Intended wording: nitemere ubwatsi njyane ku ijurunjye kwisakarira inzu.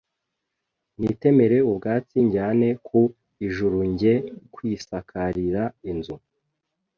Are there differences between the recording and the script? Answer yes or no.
no